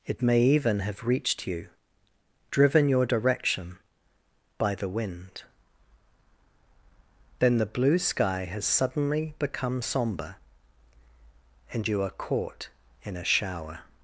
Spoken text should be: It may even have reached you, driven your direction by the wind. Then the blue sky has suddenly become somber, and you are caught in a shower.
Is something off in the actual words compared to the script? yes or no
no